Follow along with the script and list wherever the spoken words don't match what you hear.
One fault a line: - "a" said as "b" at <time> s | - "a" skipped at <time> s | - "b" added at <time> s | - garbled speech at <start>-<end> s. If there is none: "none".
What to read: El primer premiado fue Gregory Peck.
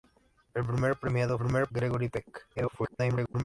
- "fue" said as "primer" at 1.4 s
- garbled speech at 2.5-3.4 s